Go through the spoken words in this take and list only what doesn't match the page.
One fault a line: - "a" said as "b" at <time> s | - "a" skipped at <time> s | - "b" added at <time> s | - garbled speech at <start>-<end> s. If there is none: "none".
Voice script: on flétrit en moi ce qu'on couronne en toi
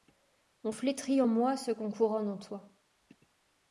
none